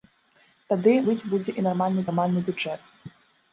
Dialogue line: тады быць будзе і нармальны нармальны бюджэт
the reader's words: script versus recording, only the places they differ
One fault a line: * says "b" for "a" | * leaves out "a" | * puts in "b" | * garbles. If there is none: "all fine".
all fine